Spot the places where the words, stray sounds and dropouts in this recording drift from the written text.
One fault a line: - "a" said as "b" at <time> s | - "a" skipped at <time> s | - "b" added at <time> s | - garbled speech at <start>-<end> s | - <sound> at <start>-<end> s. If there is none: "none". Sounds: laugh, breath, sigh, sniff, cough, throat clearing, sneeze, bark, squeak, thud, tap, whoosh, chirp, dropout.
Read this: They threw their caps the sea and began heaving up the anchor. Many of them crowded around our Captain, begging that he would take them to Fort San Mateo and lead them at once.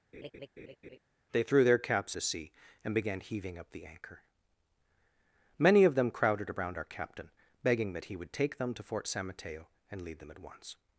- laugh at 0.1-1.0 s